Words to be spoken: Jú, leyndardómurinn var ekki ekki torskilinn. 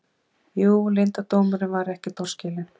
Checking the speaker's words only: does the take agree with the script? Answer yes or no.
no